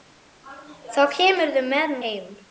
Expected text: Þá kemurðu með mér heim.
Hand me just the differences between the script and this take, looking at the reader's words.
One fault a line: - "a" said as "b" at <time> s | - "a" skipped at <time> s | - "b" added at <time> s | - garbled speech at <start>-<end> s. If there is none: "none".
- "mér" skipped at 2.0 s